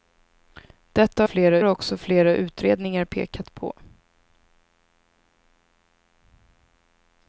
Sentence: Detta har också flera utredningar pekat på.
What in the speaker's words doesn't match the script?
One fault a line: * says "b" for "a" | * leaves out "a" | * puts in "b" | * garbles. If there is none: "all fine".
* says "flera" for "har"